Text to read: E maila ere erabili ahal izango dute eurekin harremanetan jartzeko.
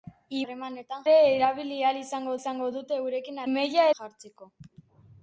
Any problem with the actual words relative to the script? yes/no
yes